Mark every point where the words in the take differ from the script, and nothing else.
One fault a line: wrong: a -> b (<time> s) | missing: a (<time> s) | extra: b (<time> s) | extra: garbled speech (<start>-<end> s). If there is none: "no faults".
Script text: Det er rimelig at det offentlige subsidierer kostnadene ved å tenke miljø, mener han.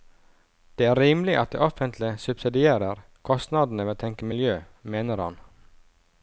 no faults